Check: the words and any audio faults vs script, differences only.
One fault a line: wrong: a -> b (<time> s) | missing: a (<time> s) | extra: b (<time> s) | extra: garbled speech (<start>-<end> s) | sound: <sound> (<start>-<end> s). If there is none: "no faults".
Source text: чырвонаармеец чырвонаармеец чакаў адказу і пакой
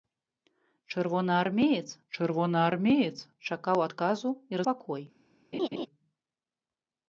sound: laugh (5.5-5.9 s)